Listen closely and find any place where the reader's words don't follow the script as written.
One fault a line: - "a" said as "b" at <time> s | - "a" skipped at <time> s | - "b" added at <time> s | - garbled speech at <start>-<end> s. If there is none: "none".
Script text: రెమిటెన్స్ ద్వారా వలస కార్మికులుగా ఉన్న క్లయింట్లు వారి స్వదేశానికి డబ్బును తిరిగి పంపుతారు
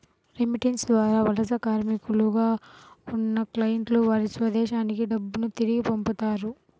none